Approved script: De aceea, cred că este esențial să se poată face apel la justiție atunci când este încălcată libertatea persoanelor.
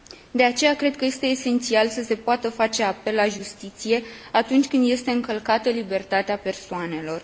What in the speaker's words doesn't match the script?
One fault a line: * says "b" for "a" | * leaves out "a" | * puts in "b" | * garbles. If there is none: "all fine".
all fine